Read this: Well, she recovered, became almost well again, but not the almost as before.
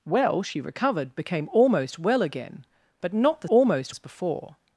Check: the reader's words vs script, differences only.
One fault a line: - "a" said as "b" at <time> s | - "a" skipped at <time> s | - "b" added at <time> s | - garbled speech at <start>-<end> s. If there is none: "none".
none